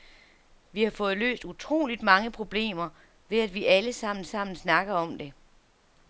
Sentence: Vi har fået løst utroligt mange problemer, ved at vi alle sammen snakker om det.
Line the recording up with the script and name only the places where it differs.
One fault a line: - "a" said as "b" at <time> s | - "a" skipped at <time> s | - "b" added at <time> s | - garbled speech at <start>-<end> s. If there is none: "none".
- "sammen" added at 4.2 s